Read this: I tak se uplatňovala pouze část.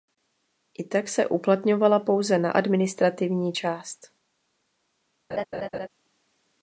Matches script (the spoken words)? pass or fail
fail